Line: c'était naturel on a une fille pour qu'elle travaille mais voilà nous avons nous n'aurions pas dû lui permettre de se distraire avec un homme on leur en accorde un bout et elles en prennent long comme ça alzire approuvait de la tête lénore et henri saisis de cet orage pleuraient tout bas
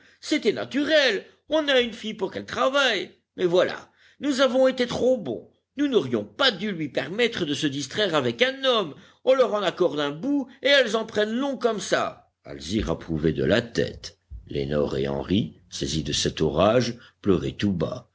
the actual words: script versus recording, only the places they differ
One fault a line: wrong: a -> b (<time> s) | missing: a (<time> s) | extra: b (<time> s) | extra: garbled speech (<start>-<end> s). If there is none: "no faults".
extra: été trop bons (4.7 s)